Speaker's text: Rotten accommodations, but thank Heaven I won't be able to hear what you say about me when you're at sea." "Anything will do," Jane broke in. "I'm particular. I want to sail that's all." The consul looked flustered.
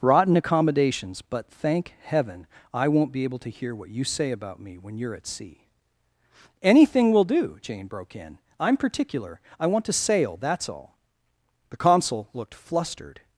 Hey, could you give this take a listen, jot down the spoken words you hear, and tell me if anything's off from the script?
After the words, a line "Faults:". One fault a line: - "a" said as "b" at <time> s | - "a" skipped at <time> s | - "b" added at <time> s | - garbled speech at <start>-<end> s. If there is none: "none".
Rotten accommodations, but thank Heaven I won't be able to hear what you say about me when you're at sea." "Anything will do," Jane broke in. "I'm particular. I want to sail that's all." The consul looked flustered.
Faults:
none